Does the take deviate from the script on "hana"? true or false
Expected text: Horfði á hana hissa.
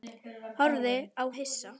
true